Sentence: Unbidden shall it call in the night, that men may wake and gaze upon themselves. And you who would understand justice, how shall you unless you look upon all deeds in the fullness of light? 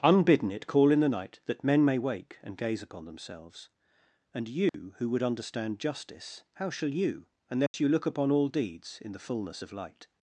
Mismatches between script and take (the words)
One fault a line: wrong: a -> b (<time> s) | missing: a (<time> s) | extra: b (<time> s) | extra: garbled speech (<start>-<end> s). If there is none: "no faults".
missing: shall (0.5 s)